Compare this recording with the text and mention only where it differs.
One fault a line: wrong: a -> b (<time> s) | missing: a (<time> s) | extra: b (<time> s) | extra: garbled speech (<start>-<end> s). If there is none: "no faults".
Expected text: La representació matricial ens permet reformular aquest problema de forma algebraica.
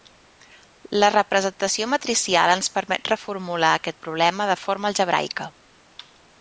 no faults